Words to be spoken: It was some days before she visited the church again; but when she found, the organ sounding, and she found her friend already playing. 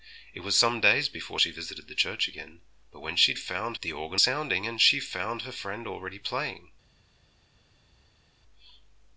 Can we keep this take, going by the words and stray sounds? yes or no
yes